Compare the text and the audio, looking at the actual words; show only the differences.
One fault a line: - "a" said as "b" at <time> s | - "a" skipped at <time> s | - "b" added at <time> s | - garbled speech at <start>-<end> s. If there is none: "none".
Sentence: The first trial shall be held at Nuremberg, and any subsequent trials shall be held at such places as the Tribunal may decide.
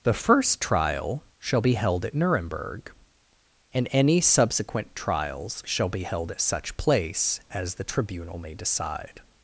- "places" said as "place" at 6.8 s